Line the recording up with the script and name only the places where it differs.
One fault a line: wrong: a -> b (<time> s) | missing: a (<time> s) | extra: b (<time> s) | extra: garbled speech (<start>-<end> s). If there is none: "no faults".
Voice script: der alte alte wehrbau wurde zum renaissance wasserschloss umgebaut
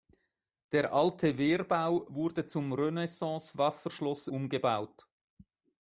missing: alte (1.4 s)